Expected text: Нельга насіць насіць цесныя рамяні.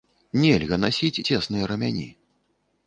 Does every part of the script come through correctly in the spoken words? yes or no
no